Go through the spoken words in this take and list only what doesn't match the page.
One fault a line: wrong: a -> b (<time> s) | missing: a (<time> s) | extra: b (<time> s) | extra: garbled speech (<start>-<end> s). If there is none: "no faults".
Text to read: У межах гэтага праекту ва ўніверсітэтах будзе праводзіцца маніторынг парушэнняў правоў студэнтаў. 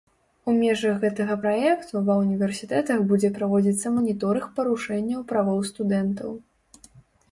no faults